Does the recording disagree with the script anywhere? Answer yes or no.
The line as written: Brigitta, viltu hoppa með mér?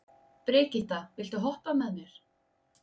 no